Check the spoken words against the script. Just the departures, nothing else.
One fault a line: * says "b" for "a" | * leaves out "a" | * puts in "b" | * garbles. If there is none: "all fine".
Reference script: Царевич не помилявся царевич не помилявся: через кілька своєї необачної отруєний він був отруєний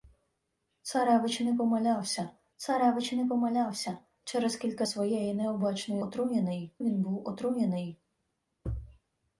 all fine